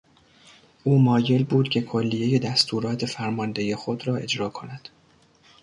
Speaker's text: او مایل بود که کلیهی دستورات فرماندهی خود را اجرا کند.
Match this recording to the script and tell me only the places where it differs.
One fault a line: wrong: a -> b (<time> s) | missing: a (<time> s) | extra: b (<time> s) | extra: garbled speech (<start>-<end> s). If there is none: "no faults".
no faults